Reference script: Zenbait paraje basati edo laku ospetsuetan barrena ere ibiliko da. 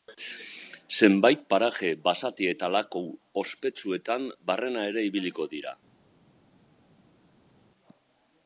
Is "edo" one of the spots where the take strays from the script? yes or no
yes